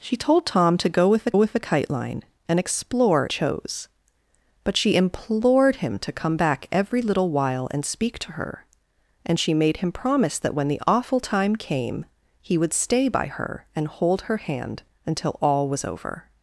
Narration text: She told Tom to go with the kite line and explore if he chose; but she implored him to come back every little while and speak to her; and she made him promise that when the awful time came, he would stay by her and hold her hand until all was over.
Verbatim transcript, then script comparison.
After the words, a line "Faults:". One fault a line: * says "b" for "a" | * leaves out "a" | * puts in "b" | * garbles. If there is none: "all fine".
She told Tom to go with the with the kite line and explore chose; but she implored him to come back every little while and speak to her; and she made him promise that when the awful time came, he would stay by her and hold her hand until all was over.
Faults:
* puts in "with the"
* leaves out "if he"